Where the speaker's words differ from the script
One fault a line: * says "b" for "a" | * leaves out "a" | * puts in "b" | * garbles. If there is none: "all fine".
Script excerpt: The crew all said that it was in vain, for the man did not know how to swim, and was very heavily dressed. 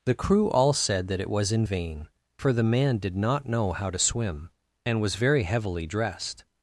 all fine